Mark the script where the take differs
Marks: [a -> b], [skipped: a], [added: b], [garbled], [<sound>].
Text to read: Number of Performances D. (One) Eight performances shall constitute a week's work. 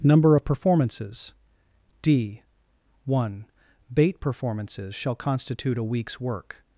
Number of Performances D. (One) [Eight -> Bait] performances shall constitute a week's work.